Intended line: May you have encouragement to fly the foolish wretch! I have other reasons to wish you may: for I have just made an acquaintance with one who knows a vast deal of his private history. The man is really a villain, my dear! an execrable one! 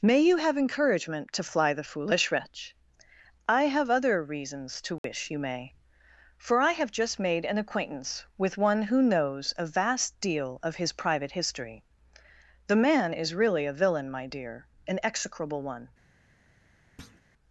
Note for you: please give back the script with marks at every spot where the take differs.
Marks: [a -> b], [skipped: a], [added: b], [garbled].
May you have encouragement to fly the foolish wretch! I have other reasons to wish you may: for I have just made an acquaintance with one who knows a vast deal of his private history. The man is really a villain, my dear! an execrable one!